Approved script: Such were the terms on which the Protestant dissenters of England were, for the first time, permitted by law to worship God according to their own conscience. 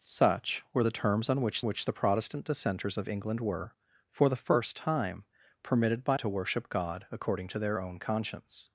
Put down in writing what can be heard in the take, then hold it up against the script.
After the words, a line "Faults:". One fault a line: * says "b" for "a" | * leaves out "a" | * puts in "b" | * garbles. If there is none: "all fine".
Such were the terms on which which the Protestant dissenters of England were, for the first time, permitted by to worship God according to their own conscience.
Faults:
* puts in "which"
* leaves out "law"